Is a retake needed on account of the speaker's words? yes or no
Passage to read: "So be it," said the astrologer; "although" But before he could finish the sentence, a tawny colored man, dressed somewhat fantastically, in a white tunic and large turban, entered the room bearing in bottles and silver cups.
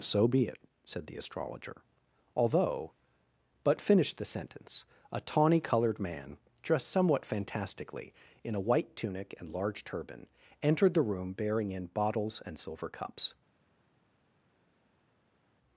yes